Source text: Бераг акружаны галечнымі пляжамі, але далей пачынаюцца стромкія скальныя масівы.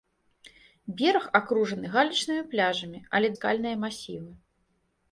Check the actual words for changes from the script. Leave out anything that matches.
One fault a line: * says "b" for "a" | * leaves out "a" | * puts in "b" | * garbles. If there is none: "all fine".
* leaves out "далей пачынаюцца стромкія"